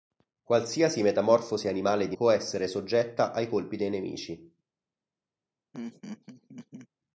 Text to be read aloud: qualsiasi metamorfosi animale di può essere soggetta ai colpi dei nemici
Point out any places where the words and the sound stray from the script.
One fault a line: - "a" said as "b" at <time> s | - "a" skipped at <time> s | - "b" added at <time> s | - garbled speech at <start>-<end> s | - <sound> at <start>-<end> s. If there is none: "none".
- laugh at 5.7-6.9 s